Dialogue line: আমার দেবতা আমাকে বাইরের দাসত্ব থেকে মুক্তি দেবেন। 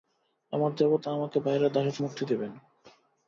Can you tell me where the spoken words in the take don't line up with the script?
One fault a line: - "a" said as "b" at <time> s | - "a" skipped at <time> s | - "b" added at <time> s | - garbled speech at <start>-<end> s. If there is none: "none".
- "থেকে" skipped at 2.0 s